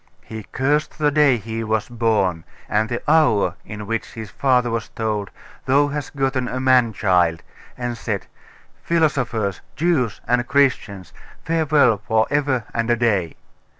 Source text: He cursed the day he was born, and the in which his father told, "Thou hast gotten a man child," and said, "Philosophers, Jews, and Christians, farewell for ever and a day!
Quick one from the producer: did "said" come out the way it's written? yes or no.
yes